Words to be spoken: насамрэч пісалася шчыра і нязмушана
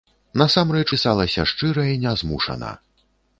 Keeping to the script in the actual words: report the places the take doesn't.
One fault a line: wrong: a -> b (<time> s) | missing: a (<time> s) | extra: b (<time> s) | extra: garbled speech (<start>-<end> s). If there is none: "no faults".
no faults